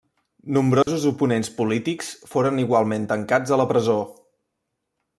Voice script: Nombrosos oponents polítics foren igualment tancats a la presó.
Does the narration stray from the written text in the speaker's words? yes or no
no